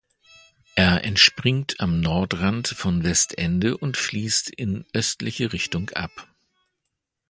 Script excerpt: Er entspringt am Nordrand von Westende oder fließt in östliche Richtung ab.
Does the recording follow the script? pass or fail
fail